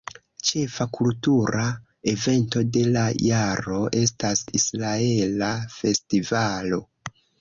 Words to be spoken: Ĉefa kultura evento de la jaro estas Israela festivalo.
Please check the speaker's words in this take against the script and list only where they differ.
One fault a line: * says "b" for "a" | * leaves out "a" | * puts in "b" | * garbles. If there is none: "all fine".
all fine